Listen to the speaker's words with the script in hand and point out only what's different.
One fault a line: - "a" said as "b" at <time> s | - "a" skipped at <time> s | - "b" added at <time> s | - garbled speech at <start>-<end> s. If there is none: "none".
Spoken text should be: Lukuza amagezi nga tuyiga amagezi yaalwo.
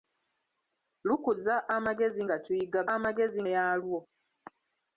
none